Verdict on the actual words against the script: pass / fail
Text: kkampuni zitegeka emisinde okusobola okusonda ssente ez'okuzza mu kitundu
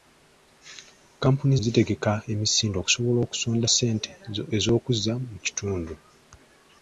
pass